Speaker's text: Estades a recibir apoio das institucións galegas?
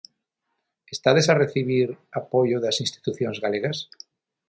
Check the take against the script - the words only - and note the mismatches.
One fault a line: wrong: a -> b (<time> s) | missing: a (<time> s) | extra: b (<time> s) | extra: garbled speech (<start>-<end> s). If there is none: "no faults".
no faults